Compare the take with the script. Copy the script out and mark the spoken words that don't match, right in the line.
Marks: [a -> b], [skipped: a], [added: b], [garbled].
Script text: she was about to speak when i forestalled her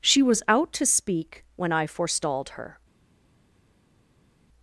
she was [about -> out] to speak when i forestalled her